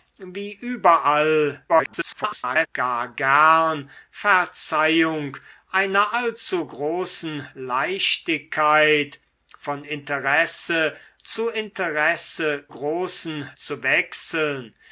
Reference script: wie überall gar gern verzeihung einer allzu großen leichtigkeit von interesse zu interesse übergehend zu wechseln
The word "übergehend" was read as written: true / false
false